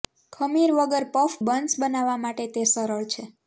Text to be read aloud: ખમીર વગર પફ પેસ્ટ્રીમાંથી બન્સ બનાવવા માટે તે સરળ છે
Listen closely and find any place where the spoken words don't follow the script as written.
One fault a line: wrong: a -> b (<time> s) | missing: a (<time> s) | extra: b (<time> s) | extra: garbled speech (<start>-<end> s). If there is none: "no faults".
missing: પેસ્ટ્રીમાંથી (1.4 s)